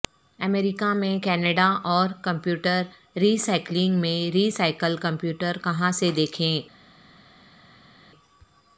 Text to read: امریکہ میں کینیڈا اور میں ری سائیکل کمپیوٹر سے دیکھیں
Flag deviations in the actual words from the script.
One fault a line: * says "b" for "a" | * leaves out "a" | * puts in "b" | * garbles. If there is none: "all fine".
* puts in "کمپیوٹر ری سائیکلنگ"
* puts in "کہاں"